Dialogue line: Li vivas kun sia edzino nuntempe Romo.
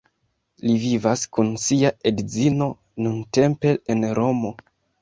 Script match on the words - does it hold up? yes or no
no